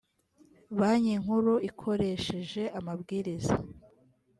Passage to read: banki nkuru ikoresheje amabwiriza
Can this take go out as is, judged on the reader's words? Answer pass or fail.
pass